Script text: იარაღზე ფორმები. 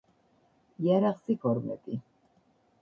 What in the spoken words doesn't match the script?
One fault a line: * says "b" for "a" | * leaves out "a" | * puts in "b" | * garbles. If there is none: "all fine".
all fine